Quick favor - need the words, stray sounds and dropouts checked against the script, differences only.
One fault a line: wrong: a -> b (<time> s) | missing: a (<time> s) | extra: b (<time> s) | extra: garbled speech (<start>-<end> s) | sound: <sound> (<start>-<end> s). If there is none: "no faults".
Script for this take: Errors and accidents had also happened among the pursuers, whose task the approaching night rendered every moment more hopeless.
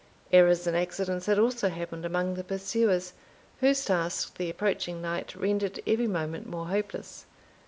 no faults